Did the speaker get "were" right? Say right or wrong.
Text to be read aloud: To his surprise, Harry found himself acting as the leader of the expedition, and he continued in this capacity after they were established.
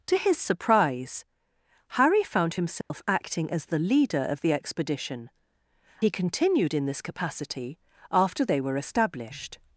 right